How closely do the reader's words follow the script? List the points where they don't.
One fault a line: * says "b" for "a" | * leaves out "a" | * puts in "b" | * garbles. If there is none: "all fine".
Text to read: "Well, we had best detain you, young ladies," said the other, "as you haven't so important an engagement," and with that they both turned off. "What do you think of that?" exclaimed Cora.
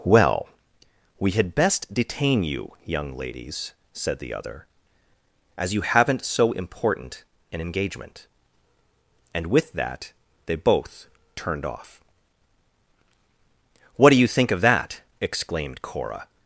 all fine